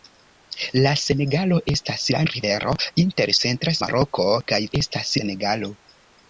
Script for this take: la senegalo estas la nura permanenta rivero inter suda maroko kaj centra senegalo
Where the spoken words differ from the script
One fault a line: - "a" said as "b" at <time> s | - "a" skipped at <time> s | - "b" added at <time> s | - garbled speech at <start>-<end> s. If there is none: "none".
- "nura permanenta" skipped at 2.2 s
- "suda" said as "centra" at 3.5 s
- "centra" said as "estas" at 4.8 s